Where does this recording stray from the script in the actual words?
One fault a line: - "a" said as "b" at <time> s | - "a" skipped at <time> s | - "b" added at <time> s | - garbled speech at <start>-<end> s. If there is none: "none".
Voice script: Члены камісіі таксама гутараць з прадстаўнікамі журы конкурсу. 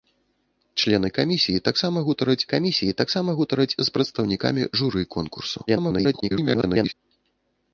- "камісіі таксама гутараць" added at 2.5 s
- garbled speech at 5.7-6.9 s